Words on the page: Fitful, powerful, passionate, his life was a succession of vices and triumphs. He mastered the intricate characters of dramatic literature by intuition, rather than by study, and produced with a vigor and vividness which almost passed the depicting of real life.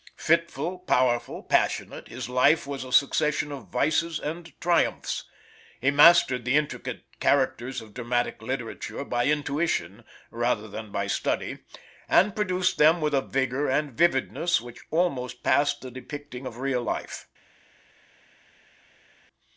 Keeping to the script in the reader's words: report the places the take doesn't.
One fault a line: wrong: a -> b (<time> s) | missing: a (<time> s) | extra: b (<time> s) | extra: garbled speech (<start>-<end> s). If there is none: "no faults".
extra: them (12.8 s)